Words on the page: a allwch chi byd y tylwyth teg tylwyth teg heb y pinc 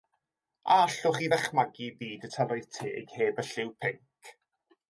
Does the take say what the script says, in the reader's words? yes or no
no